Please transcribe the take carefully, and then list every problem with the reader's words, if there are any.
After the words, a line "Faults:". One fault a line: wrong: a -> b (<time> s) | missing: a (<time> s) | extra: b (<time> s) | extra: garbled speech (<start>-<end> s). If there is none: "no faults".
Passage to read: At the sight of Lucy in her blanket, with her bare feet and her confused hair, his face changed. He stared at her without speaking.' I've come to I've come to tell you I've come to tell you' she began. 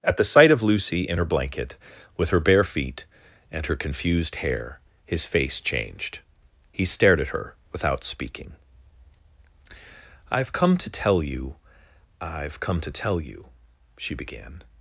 At the sight of Lucy in her blanket, with her bare feet and her confused hair, his face changed. He stared at her without speaking.' I've come to tell you I've come to tell you' she began.
Faults:
missing: I've come to (10.9 s)